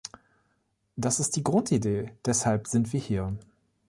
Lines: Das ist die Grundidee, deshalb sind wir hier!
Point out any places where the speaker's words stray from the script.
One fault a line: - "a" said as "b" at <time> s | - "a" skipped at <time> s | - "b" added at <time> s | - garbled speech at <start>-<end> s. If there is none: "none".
none